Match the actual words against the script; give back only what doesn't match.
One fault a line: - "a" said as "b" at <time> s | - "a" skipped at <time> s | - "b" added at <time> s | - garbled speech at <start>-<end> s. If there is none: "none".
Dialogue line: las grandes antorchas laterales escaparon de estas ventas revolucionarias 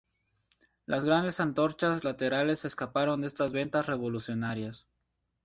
none